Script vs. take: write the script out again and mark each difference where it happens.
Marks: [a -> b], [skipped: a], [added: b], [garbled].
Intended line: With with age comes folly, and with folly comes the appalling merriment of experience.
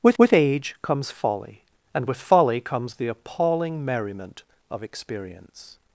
With with age comes folly, and with folly comes the appalling merriment of experience.